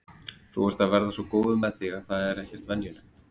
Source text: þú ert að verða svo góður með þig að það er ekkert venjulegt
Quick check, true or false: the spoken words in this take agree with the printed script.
true